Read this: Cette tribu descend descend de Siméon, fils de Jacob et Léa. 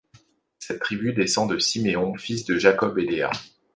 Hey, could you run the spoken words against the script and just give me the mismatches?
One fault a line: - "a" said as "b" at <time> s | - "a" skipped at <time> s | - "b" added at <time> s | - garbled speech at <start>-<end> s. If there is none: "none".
- "descend" skipped at 1.5 s